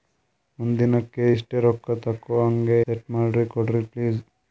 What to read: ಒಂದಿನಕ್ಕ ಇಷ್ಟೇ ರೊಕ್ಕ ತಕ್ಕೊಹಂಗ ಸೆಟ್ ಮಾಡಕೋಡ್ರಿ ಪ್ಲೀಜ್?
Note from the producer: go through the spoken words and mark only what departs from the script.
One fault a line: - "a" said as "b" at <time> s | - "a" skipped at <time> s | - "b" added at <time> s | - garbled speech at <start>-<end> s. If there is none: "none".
none